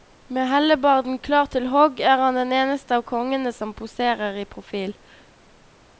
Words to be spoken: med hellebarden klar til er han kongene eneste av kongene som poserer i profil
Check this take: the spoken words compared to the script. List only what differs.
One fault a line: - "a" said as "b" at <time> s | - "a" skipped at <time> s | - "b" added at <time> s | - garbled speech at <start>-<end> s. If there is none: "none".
- "hogg" added at 1.7 s
- "kongene" said as "den" at 2.4 s